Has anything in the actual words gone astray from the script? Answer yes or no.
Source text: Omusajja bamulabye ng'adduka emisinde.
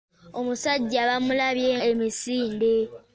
yes